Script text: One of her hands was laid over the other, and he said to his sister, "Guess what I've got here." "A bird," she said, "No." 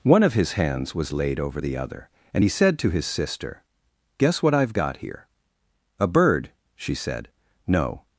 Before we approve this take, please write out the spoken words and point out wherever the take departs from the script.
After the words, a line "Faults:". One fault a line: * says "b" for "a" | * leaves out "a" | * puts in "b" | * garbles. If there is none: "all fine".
One of his hands was laid over the other, and he said to his sister, "Guess what I've got here." "A bird," she said, "No."
Faults:
* says "his" for "her"